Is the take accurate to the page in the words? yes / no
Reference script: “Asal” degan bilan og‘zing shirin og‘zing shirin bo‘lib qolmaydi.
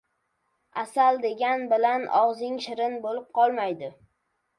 no